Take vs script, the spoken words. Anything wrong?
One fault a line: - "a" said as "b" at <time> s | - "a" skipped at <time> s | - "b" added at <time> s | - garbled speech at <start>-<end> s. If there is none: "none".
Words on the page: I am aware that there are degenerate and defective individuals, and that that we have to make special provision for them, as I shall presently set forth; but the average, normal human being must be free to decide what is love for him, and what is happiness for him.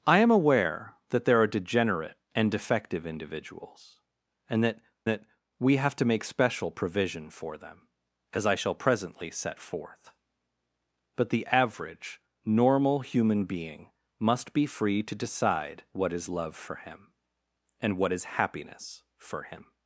none